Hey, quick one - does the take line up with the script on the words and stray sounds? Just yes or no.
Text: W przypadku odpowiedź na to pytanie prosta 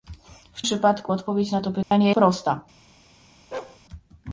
no